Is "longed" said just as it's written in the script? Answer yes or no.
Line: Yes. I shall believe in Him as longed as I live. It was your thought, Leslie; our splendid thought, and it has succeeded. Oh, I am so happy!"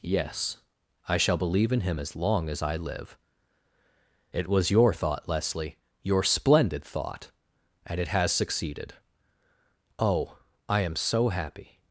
no